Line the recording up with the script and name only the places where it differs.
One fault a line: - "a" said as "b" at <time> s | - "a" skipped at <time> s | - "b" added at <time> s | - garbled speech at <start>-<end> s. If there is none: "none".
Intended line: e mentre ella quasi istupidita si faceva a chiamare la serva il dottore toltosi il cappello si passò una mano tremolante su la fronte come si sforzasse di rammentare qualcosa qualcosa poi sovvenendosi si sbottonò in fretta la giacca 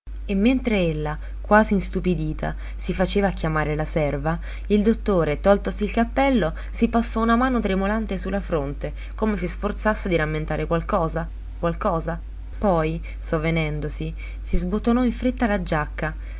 none